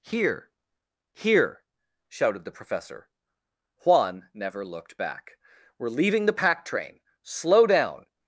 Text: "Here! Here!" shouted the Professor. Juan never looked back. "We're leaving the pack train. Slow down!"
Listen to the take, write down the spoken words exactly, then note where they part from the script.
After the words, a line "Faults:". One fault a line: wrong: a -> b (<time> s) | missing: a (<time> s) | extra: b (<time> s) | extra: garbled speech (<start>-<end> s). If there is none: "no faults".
"Here! Here!" shouted the Professor. Juan never looked back. "We're leaving the pack train. Slow down!"
Faults:
no faults